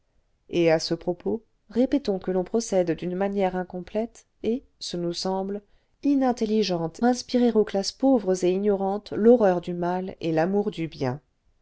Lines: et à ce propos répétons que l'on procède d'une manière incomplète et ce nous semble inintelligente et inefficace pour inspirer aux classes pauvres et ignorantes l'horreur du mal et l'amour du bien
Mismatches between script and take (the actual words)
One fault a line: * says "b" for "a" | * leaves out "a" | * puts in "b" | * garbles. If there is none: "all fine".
* leaves out "et inefficace pour"